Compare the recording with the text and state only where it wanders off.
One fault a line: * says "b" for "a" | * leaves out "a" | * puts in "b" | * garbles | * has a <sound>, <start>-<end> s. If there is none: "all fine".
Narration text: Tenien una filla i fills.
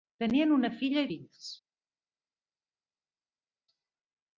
all fine